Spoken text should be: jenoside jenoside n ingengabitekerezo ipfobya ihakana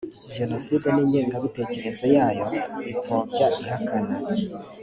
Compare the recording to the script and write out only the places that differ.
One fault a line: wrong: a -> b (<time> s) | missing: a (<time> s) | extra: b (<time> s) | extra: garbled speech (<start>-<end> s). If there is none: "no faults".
missing: jenoside (0.9 s)
extra: yayo (2.1 s)